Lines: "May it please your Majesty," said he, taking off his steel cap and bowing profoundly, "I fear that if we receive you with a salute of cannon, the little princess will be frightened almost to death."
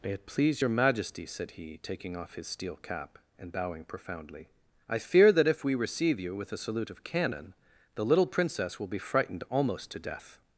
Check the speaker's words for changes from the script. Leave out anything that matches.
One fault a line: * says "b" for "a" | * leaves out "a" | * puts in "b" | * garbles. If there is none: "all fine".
all fine